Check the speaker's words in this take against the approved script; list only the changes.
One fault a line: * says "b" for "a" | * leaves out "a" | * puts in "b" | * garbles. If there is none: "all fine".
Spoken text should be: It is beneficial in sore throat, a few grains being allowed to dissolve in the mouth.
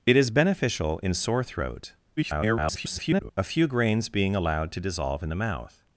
* garbles